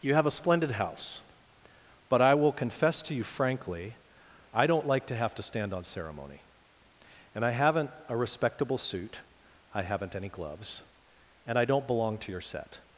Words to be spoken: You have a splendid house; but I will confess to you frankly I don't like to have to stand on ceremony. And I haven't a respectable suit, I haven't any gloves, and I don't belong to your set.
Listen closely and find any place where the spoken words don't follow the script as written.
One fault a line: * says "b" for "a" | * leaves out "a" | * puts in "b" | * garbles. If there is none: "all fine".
all fine